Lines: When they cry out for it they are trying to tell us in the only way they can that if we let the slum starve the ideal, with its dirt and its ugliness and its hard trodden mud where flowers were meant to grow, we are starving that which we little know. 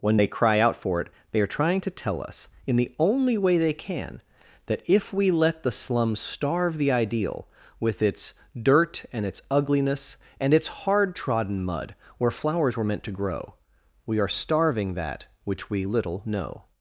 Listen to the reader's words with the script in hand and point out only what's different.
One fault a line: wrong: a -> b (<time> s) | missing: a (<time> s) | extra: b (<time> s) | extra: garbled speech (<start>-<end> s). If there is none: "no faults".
no faults